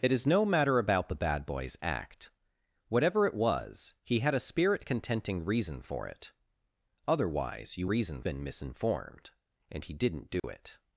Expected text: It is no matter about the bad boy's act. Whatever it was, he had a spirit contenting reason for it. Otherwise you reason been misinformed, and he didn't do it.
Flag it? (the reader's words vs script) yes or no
no